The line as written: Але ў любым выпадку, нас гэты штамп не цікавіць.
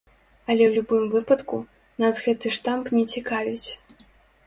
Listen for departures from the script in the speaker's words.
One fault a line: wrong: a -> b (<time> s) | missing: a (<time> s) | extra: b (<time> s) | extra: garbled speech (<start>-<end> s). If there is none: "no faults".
no faults